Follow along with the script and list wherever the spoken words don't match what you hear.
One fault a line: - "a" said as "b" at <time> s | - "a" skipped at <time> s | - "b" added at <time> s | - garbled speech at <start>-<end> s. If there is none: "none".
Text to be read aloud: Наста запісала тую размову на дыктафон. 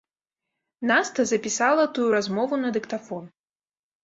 none